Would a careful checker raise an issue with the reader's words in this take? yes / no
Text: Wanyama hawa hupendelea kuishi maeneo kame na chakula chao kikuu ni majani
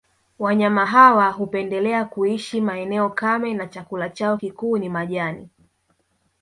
no